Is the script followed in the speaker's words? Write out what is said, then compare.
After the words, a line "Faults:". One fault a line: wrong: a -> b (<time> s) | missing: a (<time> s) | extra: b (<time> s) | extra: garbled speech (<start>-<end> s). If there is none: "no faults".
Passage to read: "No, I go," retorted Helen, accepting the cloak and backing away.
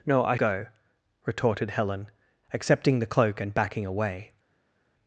"No, I go," retorted Helen, accepting the cloak and backing away.
Faults:
no faults